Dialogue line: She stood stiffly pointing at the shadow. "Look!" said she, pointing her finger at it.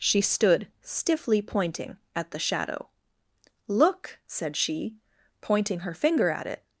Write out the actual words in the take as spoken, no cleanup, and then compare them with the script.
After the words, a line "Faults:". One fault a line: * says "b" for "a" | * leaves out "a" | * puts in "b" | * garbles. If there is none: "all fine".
She stood stiffly pointing at the shadow. "Look!" said she, pointing her finger at it.
Faults:
all fine